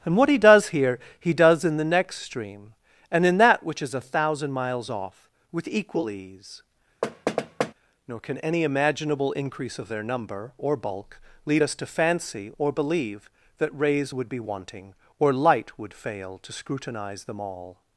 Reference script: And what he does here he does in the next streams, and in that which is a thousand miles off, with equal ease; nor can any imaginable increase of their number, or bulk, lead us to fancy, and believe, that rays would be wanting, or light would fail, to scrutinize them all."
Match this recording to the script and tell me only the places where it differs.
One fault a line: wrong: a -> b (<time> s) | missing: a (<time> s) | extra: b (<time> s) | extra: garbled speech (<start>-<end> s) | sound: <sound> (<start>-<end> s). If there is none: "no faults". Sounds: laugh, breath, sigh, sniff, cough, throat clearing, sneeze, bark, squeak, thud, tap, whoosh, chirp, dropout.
wrong: streams -> stream (2.2 s)
sound: thud (7.0-7.7 s)
wrong: and -> or (12.6 s)